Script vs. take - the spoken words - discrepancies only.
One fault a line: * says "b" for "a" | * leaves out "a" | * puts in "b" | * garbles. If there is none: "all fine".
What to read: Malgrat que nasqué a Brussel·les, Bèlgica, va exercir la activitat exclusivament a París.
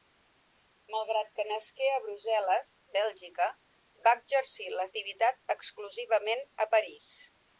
all fine